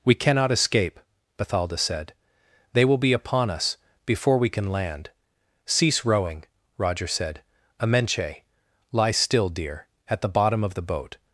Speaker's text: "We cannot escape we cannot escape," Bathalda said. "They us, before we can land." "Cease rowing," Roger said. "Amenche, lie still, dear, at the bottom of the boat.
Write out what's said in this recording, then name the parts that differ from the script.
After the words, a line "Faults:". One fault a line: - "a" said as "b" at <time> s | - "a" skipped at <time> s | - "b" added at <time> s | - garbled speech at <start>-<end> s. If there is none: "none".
"We cannot escape," Bathalda said. "They will be upon us, before we can land." "Cease rowing," Roger said. "Amenche, lie still, dear, at the bottom of the boat.
Faults:
- "we cannot escape Bathalda said They" said as "Bathalda said They will be upon" at 1.4 s